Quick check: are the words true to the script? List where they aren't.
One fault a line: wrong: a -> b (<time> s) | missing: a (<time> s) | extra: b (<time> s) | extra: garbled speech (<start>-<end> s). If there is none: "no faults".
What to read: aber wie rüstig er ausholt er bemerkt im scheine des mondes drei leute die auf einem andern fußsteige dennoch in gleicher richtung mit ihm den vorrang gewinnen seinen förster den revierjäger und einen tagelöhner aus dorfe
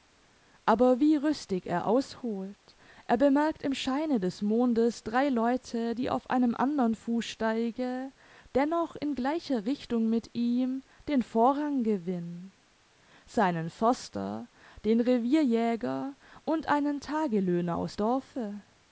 no faults